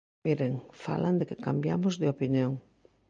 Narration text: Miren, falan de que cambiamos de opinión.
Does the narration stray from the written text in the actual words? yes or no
no